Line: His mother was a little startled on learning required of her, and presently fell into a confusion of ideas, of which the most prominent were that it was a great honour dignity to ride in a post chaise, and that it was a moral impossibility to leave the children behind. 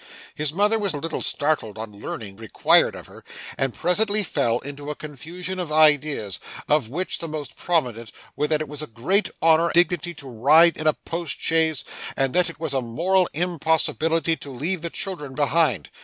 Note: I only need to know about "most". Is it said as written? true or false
true